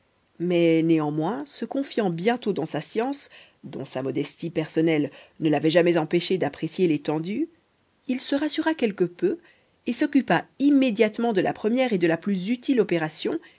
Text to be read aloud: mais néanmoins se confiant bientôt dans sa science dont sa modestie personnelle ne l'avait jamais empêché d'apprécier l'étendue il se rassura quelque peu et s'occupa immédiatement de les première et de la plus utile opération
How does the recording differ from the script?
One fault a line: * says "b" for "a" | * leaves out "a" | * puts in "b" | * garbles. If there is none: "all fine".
* says "la" for "les"